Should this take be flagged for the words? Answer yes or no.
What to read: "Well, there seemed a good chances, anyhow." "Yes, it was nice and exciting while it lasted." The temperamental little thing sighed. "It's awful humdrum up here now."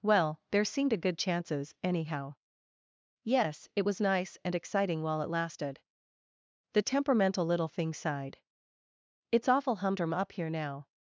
no